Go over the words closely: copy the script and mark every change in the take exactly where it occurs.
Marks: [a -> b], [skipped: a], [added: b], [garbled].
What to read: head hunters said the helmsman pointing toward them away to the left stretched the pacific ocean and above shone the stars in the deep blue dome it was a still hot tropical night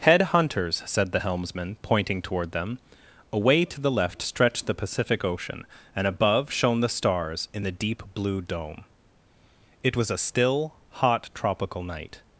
head hunters said the helmsman pointing toward them away to the left stretched the pacific ocean and above shone the stars in the deep blue dome it was a still hot tropical night